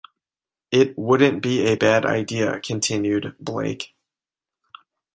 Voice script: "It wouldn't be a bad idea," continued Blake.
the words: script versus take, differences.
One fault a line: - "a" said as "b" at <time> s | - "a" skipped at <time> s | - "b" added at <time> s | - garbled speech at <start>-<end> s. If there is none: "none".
none